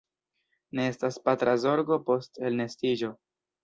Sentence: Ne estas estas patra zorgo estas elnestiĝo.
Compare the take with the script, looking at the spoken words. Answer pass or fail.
fail